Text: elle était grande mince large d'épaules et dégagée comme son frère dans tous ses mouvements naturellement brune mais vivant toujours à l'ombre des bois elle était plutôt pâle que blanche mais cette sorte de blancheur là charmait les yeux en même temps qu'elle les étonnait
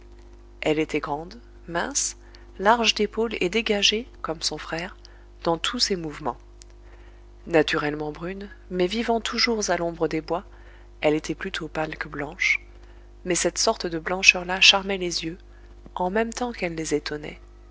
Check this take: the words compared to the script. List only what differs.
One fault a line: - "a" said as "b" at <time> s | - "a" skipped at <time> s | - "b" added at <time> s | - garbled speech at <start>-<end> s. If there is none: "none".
none